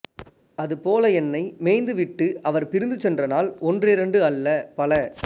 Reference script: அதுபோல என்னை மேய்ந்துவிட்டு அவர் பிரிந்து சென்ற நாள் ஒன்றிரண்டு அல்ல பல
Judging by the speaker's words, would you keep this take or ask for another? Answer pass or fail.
pass